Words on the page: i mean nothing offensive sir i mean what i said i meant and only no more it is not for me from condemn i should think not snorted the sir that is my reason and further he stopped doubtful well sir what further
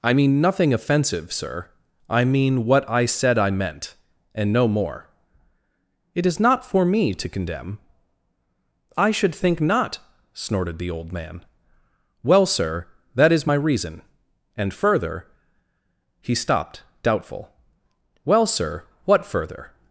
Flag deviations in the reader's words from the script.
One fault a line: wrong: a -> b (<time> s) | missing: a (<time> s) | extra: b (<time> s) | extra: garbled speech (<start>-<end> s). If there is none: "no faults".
missing: only (4.5 s)
wrong: from -> to (7.1 s)
extra: old man well (10.9 s)